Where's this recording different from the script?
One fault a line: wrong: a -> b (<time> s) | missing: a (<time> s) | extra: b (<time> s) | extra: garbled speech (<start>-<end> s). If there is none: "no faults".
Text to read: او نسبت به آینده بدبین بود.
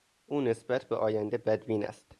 wrong: بود -> است (1.8 s)